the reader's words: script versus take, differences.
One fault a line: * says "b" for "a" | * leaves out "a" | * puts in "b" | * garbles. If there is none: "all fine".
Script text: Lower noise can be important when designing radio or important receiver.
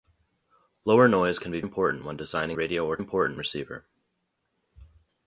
all fine